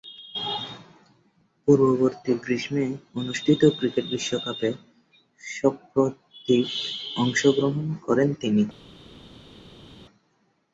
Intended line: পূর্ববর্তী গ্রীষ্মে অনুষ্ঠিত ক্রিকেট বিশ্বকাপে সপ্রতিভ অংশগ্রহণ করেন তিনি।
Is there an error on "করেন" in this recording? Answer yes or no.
no